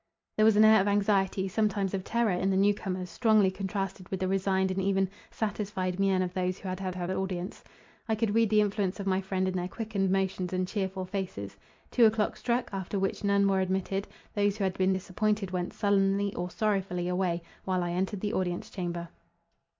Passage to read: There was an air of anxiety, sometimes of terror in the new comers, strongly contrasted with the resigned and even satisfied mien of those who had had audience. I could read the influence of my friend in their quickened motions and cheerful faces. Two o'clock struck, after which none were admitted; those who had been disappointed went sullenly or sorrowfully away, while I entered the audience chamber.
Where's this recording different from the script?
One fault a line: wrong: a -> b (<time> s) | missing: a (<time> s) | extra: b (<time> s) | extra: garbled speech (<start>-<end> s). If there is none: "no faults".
extra: had (6.9 s)